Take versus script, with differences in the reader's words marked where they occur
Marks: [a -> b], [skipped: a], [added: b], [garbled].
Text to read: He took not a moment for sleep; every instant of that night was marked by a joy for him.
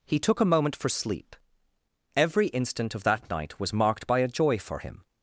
He took [skipped: not] a moment for sleep; every instant of that night was marked by a joy for him.